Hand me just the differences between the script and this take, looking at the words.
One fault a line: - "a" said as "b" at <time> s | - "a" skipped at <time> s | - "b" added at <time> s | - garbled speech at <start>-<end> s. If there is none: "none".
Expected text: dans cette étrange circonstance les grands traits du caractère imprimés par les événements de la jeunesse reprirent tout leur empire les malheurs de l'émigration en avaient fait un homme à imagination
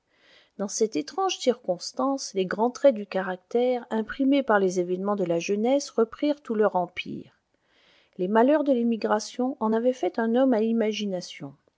none